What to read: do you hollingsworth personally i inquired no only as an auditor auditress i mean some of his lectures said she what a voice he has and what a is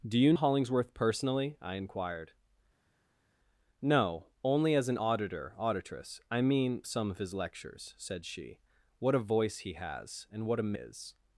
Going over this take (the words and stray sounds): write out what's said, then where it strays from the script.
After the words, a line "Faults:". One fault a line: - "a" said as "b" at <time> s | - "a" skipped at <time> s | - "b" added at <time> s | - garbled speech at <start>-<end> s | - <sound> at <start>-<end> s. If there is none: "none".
do you hollingsworth personally i inquired no only as an auditor auditress i mean some of his lectures said she what a voice he has and what a is
Faults:
none